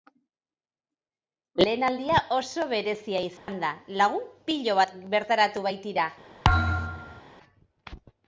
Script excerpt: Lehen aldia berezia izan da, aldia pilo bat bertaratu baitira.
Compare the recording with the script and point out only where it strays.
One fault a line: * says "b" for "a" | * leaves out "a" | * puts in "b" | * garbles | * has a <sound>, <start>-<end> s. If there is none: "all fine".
* puts in "oso"
* has a dropout, 3.4-3.5 s
* says "lagun" for "aldia"
* has a thud, 6.4-7.2 s